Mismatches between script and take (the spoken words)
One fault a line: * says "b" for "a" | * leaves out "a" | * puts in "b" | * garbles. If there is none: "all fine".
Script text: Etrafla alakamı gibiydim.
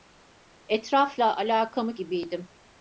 all fine